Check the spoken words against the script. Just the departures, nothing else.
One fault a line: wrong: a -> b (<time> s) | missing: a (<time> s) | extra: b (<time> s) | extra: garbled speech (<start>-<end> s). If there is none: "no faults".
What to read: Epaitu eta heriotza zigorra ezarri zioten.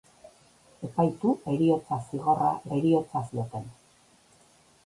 missing: eta (1.3 s)
wrong: ezarri -> heriotza (2.8 s)